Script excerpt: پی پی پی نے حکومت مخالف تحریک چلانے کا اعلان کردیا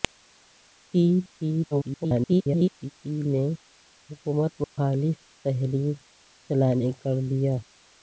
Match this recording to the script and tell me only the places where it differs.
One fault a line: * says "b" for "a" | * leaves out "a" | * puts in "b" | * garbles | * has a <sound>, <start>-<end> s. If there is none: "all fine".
* garbles
* has a dropout, 4.6-4.8 s
* leaves out "کا اعلان"